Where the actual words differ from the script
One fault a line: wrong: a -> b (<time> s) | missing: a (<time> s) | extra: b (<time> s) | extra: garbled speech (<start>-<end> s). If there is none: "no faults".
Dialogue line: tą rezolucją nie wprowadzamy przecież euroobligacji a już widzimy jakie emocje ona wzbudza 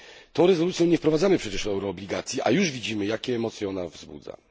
no faults